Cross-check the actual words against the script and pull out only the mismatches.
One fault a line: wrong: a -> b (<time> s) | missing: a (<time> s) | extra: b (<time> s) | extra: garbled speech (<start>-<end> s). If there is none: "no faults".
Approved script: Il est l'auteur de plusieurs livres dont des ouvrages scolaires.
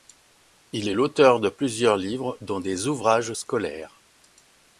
no faults